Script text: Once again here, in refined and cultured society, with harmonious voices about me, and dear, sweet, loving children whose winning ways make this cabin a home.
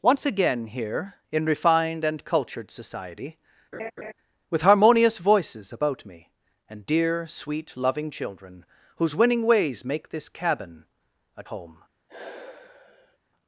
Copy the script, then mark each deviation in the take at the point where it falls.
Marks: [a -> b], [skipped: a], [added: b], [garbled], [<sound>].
Once again here, in refined and cultured society, [laugh] with harmonious voices about me, and dear, sweet, loving children whose winning ways make this cabin a home. [sigh]